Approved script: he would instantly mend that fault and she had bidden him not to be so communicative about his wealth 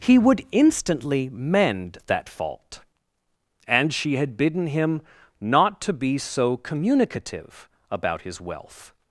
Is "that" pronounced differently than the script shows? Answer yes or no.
no